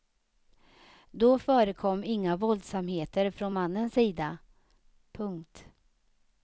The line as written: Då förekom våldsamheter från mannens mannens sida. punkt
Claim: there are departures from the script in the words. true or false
true